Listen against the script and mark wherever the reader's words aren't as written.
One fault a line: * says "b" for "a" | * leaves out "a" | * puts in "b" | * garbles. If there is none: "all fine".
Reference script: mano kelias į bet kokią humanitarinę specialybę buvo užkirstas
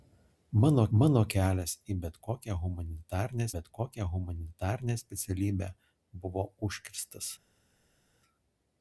* puts in "mano"
* puts in "bet kokią humanitarinę"